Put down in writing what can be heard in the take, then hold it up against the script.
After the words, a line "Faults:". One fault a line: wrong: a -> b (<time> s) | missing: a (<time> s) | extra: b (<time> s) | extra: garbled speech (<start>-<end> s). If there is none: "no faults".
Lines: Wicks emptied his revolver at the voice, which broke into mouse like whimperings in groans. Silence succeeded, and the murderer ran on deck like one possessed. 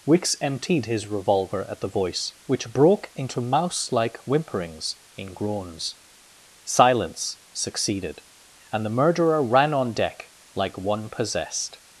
Wicks emptied his revolver at the voice, which broke into mouse like whimperings in groans. Silence succeeded, and the murderer ran on deck like one possessed.
Faults:
no faults